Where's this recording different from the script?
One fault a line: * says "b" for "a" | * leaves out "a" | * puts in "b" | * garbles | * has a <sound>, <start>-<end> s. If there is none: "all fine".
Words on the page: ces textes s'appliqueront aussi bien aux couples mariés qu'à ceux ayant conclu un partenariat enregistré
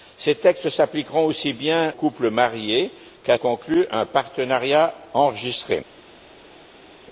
* leaves out "aux"
* leaves out "ceux ayant"